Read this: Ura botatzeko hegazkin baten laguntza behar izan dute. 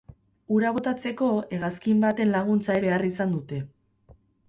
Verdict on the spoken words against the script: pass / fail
pass